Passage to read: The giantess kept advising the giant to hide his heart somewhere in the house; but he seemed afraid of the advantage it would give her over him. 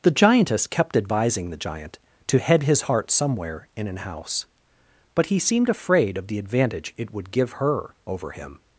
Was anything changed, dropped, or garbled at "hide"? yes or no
yes